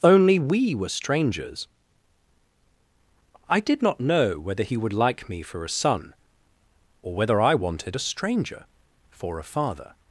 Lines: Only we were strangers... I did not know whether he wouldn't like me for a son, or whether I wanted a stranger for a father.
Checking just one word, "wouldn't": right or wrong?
wrong